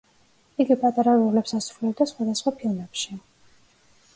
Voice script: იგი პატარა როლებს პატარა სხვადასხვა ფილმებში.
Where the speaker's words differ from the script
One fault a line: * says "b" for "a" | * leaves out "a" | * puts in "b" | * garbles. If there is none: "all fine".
* says "ასრულებდა" for "პატარა"